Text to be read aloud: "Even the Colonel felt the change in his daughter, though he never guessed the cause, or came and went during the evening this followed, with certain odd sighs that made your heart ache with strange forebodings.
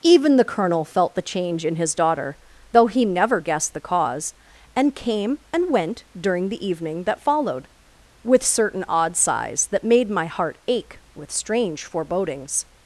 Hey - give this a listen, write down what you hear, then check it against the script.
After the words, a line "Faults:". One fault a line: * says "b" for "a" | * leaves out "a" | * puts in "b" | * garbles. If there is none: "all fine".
"Even the Colonel felt the change in his daughter, though he never guessed the cause, and came and went during the evening that followed, with certain odd sighs that made my heart ache with strange forebodings.
Faults:
* says "and" for "or"
* says "that" for "this"
* says "my" for "your"